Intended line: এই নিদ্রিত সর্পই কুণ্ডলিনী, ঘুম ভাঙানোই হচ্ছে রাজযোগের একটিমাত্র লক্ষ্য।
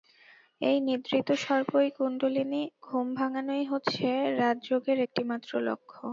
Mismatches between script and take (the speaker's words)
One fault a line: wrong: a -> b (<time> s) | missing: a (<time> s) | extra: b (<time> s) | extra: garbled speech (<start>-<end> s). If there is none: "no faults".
no faults